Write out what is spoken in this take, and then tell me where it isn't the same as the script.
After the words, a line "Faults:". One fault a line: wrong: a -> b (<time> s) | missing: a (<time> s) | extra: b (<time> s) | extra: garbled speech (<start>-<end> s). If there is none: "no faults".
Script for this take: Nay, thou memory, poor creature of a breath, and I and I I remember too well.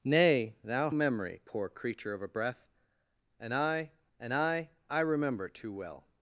Nay, thou memory, poor creature of a breath, and I and I I remember too well.
Faults:
no faults